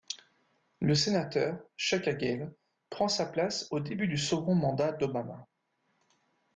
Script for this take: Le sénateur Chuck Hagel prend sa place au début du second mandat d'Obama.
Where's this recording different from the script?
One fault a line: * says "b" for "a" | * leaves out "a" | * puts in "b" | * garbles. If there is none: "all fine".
all fine